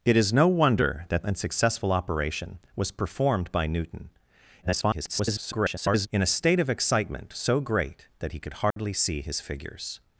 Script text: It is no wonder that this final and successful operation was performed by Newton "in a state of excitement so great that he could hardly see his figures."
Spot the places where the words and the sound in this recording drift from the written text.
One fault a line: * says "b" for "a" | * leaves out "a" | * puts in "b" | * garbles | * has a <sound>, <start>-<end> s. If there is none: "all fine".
* leaves out "this final"
* garbles
* has a dropout, 8.7-8.8 s